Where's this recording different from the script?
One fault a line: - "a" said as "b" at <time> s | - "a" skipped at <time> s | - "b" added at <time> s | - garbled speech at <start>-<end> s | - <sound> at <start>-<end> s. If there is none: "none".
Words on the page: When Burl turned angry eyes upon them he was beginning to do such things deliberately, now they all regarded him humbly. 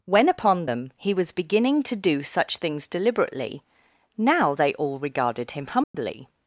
- "Burl turned angry eyes" skipped at 0.3 s
- dropout at 5.8-5.9 s